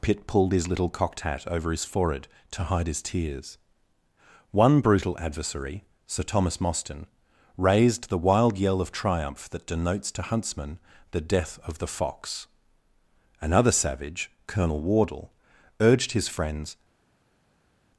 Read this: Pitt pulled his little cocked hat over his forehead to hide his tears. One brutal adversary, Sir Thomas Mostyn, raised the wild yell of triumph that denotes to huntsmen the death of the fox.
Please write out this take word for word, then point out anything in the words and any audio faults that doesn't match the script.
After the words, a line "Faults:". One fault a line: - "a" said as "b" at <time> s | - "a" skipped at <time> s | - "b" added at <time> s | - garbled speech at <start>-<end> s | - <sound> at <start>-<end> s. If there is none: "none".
Pitt pulled his little cocked hat over his forehead to hide his tears. One brutal adversary, Sir Thomas Mostyn, raised the wild yell of triumph that denotes to huntsmen the death of the fox. Another savage, Colonel Wardle, urged his friends
Faults:
- "Another savage Colonel Wardle urged his friends" added at 13.4 s